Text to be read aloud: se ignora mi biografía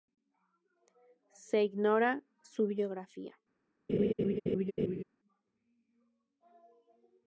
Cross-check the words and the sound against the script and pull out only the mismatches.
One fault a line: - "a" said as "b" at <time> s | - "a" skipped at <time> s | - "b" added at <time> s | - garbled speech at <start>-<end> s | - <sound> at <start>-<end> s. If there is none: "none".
- "mi" said as "su" at 2.4 s
- laugh at 3.9-5.0 s